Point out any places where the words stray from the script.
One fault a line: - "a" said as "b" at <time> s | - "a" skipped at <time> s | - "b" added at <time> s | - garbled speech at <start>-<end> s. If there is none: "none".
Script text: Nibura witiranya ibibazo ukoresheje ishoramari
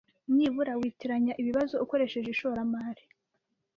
none